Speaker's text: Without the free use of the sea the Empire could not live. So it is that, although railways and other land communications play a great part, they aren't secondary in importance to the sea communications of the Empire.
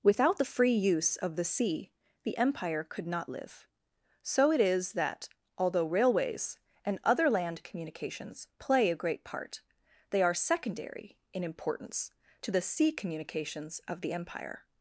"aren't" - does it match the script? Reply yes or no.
no